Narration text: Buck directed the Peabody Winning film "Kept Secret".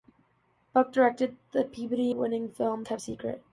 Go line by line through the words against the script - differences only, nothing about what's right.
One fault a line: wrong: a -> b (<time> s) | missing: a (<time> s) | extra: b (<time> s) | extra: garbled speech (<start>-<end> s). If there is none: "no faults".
no faults